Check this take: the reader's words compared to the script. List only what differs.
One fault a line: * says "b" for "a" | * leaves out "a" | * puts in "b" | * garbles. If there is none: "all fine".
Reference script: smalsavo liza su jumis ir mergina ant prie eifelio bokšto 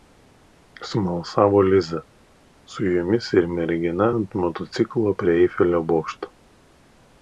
* puts in "motociklo"